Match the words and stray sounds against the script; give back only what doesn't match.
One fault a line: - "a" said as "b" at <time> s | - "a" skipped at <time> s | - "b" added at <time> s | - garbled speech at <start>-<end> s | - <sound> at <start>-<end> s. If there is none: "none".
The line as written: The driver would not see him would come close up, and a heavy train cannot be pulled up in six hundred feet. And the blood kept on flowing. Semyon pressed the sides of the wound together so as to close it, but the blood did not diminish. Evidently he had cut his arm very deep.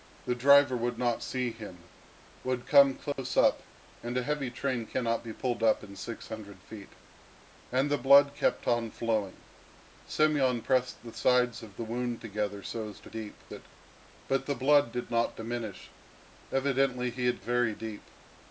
- dropout at 3.1-3.2 s
- "close" said as "deep" at 13.1 s
- "cut his arm" skipped at 17.4 s